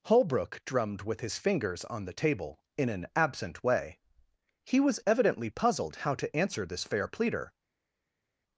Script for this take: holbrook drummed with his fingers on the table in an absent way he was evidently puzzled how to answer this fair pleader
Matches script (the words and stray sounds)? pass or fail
pass